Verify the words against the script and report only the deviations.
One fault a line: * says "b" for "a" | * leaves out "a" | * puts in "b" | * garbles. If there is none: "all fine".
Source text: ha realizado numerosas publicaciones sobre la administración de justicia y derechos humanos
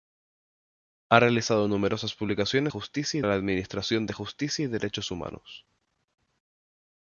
* says "justicia" for "sobre"